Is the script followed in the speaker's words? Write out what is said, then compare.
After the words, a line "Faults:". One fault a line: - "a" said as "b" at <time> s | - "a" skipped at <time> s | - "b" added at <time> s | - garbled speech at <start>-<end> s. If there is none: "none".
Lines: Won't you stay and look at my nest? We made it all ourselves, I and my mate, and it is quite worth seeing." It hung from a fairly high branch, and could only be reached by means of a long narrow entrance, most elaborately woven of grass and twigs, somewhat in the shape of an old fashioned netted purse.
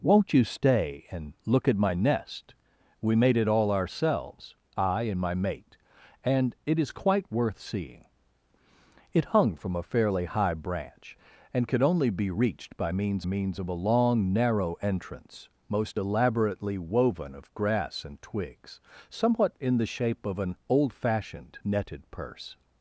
Won't you stay and look at my nest? We made it all ourselves, I and my mate, and it is quite worth seeing." It hung from a fairly high branch, and could only be reached by means means of a long narrow entrance, most elaborately woven of grass and twigs, somewhat in the shape of an old fashioned netted purse.
Faults:
- "means" added at 13.2 s